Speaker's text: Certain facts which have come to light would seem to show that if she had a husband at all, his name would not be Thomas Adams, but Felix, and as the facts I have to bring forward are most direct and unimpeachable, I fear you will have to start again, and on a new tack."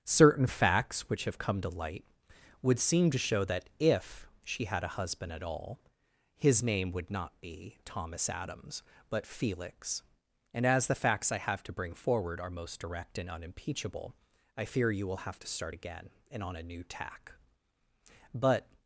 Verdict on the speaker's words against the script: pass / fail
fail